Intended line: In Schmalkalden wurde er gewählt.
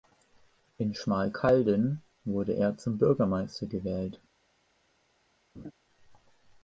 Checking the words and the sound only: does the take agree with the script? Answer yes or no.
no